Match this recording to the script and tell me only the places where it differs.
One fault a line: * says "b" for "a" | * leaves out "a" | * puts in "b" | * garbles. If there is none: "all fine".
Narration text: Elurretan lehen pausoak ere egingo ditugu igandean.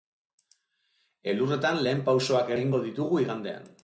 * leaves out "ere"